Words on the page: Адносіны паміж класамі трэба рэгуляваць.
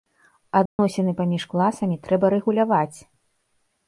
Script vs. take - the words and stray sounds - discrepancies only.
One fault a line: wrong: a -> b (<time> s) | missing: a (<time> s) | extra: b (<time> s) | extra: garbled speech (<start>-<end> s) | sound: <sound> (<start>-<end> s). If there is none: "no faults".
sound: dropout (0.7-0.8 s)